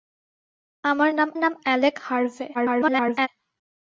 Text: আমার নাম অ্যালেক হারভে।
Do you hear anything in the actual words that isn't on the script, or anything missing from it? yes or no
yes